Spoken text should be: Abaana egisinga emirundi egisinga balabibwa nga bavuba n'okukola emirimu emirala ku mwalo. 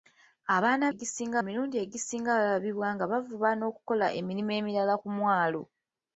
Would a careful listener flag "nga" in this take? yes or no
no